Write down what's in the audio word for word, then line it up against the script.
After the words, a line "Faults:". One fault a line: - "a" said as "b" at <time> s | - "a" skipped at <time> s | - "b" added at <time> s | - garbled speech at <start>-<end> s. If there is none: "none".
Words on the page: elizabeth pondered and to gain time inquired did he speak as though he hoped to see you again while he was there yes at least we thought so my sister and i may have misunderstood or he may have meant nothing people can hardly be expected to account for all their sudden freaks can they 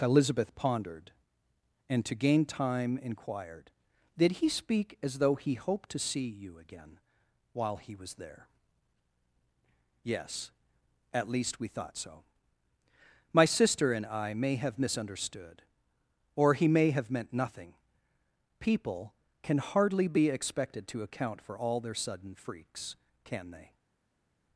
elizabeth pondered and to gain time inquired did he speak as though he hoped to see you again while he was there yes at least we thought so my sister and i may have misunderstood or he may have meant nothing people can hardly be expected to account for all their sudden freaks can they
Faults:
none